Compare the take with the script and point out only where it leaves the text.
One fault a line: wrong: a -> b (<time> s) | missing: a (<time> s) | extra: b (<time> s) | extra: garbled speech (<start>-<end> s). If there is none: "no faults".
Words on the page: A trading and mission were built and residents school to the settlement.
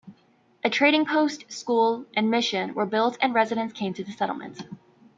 extra: post school (1.1 s)
wrong: school -> came (3.7 s)